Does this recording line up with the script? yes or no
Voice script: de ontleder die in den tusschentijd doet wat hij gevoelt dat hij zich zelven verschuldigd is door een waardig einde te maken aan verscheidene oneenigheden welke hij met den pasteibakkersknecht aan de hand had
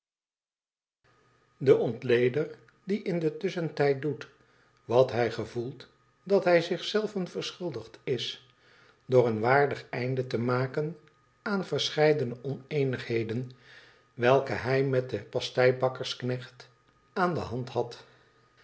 yes